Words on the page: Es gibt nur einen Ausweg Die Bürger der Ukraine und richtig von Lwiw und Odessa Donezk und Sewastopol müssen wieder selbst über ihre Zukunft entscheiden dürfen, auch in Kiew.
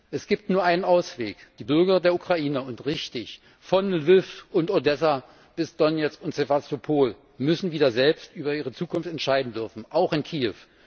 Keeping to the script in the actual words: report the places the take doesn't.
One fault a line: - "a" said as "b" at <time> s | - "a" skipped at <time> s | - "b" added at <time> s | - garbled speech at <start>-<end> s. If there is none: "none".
- "bis" added at 5.6 s